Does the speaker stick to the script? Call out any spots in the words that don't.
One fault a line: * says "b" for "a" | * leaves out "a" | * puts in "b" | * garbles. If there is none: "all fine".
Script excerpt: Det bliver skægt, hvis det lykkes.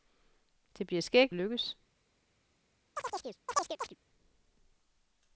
* leaves out "hvis det"